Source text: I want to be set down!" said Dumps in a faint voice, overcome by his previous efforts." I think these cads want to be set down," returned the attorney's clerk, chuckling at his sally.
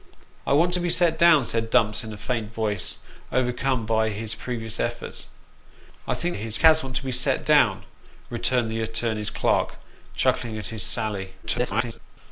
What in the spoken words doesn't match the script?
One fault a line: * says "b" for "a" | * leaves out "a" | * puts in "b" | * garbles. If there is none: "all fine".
* says "his" for "these"
* garbles